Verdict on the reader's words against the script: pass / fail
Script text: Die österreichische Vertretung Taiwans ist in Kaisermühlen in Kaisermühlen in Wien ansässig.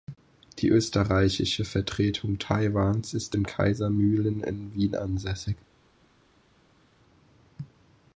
fail